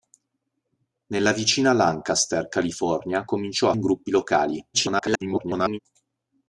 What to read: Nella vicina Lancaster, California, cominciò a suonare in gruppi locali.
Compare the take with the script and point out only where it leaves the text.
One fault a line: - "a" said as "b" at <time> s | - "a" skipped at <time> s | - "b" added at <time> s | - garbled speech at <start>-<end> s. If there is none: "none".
- "suonare" skipped at 3.8 s
- garbled speech at 4.7-5.8 s